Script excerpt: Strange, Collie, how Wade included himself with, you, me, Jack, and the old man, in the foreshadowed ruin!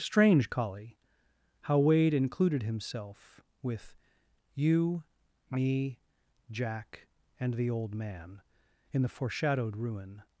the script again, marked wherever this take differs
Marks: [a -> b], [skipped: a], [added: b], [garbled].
Strange, Collie, how Wade included himself with, you, me, Jack, and the old man, in the foreshadowed ruin!